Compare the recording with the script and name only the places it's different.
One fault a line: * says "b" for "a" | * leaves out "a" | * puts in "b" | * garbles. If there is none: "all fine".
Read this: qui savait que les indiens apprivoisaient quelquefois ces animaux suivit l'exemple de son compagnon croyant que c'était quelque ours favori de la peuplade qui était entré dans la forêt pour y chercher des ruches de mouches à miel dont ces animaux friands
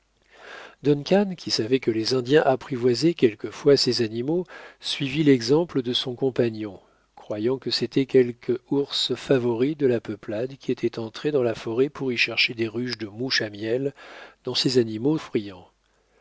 all fine